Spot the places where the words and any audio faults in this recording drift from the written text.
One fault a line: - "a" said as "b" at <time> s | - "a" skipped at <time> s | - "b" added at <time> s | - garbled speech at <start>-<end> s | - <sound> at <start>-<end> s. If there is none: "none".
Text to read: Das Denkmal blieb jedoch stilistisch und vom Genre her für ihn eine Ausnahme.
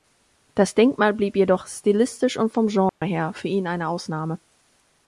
- dropout at 2.9-3.0 s